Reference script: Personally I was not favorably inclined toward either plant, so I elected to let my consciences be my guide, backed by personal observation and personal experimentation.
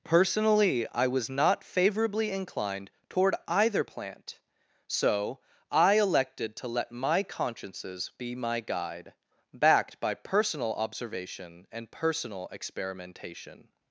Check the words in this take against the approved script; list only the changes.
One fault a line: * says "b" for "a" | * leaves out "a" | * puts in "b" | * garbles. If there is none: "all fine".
all fine